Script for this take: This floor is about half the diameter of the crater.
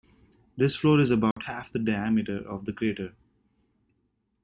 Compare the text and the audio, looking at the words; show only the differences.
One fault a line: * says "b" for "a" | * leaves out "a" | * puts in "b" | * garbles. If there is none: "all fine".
all fine